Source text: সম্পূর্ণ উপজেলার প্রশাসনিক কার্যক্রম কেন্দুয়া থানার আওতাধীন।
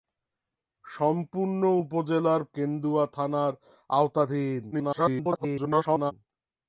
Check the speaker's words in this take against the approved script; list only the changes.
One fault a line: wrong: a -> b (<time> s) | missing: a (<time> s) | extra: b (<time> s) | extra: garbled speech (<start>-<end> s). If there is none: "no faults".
missing: প্রশাসনিক কার্যক্রম (2.4 s)
extra: garbled speech (4.7-6.1 s)